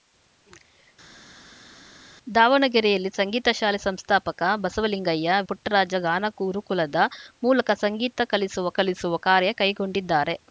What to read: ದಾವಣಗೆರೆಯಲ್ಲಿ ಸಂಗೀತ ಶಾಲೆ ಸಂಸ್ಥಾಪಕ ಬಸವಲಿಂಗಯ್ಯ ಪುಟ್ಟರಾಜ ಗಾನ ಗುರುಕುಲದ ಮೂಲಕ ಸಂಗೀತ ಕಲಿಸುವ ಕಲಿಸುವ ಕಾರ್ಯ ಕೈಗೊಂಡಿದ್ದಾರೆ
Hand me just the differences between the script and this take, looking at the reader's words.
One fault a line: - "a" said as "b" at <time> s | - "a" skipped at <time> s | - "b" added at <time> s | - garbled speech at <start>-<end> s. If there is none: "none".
none